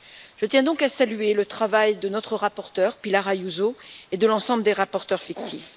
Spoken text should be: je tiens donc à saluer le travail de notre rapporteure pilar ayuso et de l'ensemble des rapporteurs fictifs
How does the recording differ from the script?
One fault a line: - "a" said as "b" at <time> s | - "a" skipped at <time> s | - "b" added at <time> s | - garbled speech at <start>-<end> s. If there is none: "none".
none